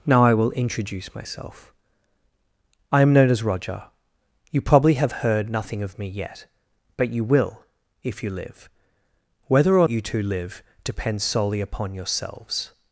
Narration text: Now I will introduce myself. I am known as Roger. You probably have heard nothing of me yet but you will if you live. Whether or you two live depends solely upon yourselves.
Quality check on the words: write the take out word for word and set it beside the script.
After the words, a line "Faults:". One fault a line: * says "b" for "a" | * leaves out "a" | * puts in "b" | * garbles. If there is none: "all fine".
Now I will introduce myself. I am known as Roger. You probably have heard nothing of me yet but you will if you live. Whether or you two live depends solely upon yourselves.
Faults:
all fine